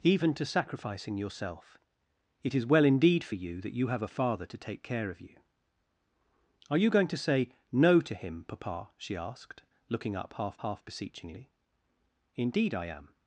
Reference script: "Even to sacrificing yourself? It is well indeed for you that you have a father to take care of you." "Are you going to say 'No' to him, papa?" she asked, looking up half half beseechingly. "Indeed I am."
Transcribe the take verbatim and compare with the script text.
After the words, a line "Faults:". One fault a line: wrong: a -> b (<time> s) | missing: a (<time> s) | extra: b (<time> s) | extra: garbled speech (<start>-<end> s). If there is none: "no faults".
"Even to sacrificing yourself? It is well indeed for you that you have a father to take care of you." "Are you going to say 'No' to him, papa?" she asked, looking up half half beseechingly. "Indeed I am."
Faults:
no faults